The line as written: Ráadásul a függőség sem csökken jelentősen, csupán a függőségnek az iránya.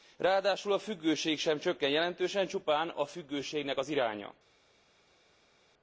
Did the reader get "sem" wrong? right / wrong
right